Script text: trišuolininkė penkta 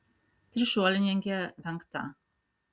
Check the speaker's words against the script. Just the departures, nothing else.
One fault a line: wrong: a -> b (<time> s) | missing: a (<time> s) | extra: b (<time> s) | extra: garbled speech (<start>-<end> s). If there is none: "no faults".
no faults